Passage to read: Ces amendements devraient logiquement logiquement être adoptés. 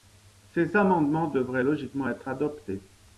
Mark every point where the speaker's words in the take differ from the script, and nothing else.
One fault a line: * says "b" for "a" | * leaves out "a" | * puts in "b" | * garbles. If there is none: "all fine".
* leaves out "logiquement"